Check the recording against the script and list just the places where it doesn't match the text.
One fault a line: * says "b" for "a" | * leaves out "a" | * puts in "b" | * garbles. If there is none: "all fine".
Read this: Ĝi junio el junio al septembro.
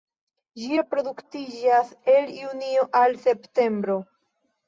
* says "reproduktiĝas" for "junio"